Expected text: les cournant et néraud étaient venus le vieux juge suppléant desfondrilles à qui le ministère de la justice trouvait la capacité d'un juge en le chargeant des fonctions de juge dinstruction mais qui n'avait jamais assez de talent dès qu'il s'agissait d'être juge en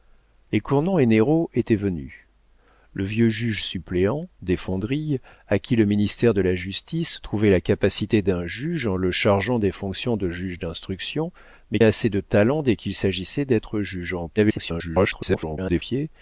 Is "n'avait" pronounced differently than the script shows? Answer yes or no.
yes